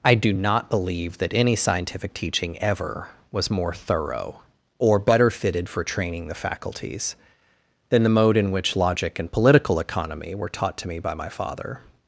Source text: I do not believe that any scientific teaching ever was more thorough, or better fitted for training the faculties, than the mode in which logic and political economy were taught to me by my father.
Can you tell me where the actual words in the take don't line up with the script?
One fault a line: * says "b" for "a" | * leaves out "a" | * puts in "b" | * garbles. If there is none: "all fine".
all fine